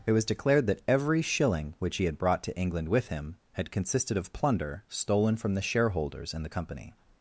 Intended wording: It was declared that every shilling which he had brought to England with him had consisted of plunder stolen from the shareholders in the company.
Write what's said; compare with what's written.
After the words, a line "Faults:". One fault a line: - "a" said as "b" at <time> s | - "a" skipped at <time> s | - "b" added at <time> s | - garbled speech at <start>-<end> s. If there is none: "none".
It was declared that every shilling which he had brought to England with him had consisted of plunder stolen from the shareholders in the company.
Faults:
none